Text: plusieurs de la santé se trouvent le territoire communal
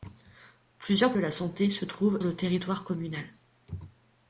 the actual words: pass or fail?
pass